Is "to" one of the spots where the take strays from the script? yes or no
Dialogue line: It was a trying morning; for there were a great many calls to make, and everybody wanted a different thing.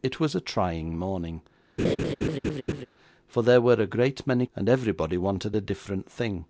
yes